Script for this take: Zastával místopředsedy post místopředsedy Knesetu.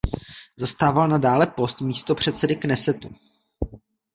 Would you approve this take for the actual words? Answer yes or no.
no